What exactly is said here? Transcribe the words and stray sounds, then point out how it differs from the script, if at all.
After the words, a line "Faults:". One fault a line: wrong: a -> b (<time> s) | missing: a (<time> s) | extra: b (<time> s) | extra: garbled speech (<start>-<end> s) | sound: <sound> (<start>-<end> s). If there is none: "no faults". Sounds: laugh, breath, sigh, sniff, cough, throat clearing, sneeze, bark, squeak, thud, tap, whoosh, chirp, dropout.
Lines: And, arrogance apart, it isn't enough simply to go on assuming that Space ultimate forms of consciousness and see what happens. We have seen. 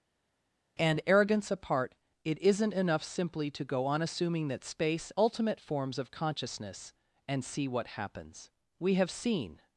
And, arrogance apart, it isn't enough simply to go on assuming that Space ultimate forms of consciousness and see what happens. We have seen.
Faults:
no faults